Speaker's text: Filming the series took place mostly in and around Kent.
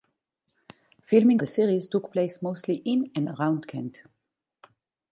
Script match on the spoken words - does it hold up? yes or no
yes